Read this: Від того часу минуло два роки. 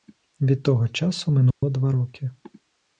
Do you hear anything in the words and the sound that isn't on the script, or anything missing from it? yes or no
yes